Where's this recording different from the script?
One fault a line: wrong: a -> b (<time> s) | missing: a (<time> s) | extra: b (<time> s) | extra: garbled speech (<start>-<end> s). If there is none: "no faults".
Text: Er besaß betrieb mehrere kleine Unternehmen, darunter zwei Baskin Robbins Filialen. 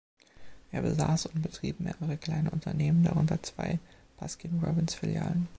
extra: und (1.3 s)